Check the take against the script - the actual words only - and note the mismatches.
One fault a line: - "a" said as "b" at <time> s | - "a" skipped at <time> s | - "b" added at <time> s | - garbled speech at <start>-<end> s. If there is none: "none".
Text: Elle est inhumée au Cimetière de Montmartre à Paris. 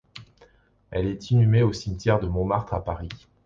none